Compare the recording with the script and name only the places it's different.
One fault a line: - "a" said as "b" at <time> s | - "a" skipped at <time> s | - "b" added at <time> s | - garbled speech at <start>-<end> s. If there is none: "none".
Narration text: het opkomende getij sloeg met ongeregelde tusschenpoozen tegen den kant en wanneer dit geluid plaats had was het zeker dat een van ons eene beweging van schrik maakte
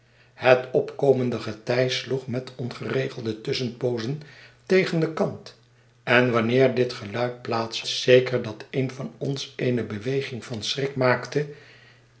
- "had was het" skipped at 7.8 s